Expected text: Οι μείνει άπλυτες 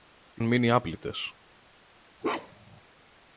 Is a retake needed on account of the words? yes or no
no